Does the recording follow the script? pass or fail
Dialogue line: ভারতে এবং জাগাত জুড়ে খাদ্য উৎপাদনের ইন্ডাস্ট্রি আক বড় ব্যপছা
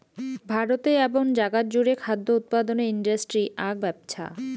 fail